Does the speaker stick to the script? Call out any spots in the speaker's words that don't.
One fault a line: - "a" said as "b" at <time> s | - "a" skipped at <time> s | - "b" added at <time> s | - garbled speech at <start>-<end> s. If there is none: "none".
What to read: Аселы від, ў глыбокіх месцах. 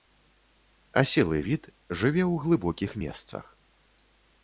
- "жыве" added at 1.9 s